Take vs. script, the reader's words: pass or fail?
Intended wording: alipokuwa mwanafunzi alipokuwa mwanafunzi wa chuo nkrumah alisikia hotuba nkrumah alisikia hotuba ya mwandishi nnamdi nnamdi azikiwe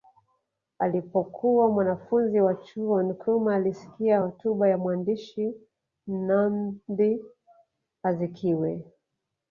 fail